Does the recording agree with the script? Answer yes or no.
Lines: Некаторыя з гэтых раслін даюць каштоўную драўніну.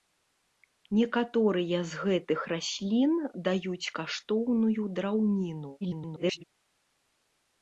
no